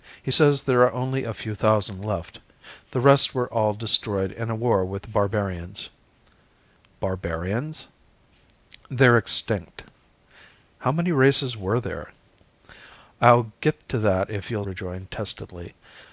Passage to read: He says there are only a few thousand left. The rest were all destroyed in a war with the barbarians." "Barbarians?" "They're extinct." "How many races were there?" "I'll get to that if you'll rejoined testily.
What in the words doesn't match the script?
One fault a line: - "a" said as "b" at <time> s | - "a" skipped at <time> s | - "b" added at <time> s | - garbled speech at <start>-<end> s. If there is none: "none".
none